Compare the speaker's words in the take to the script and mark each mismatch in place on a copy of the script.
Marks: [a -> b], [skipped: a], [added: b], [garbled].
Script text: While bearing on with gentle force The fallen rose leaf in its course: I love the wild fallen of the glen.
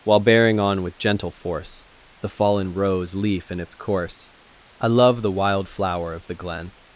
While bearing on with gentle force The fallen rose leaf in its course: I love the wild [fallen -> flower] of the glen.